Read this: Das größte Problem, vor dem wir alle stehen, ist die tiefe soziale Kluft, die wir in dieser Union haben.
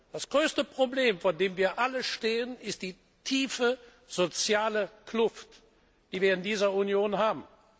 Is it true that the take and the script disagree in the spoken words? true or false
false